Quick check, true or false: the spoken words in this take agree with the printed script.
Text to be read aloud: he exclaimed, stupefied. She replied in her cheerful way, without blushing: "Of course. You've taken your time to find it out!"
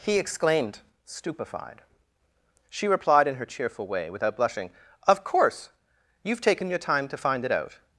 true